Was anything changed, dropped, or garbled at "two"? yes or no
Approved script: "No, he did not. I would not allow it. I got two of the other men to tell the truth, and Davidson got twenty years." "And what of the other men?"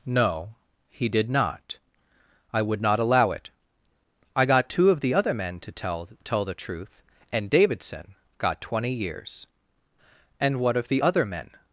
no